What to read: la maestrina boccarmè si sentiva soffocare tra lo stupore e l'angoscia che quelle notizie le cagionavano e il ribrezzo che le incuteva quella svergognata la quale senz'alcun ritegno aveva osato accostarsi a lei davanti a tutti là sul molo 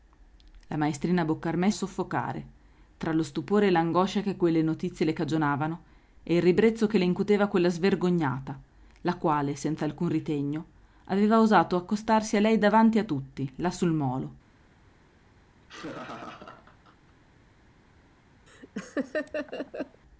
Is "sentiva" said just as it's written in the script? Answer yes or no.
no